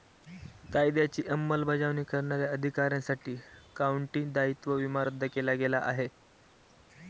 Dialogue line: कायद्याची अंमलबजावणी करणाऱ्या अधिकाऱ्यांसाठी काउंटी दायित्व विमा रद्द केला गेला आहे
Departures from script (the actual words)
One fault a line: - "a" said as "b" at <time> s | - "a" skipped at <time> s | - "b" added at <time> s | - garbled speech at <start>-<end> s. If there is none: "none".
none